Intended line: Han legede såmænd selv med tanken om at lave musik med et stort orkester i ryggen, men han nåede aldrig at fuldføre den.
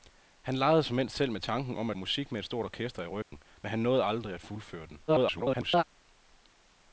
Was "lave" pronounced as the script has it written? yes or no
no